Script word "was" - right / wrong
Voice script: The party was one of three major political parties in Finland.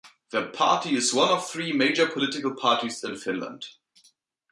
wrong